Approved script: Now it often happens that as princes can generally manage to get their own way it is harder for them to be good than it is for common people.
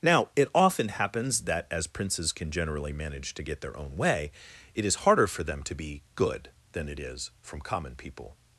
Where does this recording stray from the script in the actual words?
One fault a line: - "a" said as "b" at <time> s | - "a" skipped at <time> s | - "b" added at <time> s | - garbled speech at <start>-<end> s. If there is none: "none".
- "for" said as "from" at 7.4 s